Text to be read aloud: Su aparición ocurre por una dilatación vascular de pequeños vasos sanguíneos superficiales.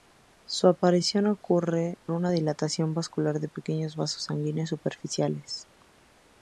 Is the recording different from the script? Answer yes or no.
yes